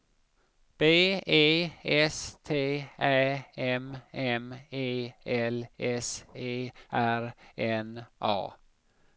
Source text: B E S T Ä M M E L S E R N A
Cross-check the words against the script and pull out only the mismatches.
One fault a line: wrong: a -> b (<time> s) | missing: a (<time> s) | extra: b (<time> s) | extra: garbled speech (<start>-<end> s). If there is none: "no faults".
no faults